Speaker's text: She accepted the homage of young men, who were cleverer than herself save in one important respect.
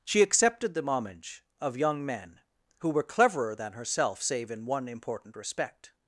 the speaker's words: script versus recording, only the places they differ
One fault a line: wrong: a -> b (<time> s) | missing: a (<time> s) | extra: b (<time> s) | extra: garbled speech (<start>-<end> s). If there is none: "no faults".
no faults